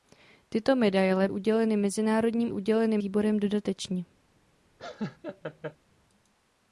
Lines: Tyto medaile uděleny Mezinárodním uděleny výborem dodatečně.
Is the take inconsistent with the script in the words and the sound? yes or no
yes